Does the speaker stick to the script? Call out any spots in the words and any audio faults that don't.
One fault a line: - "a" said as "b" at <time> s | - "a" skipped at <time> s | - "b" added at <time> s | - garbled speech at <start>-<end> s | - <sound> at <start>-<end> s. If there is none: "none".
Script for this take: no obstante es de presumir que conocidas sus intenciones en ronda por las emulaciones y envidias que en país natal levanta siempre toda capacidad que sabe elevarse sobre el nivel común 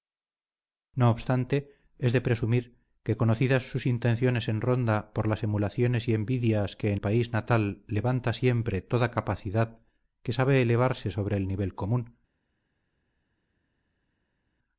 none